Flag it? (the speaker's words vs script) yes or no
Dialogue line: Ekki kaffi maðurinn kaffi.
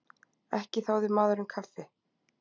yes